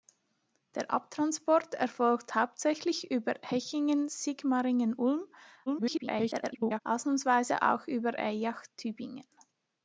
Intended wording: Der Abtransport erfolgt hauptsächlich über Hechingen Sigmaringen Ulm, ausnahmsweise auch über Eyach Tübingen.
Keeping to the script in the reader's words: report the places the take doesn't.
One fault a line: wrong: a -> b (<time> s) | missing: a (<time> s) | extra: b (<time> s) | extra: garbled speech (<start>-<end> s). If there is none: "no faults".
extra: garbled speech (5.7-6.8 s)